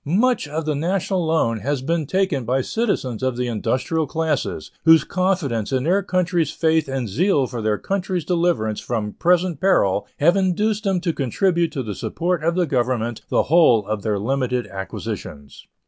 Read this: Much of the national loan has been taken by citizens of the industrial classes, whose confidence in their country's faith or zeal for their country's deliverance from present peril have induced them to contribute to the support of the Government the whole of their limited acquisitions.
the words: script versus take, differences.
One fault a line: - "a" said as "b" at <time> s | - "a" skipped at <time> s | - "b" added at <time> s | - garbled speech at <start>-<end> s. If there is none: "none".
- "or" said as "and" at 6.9 s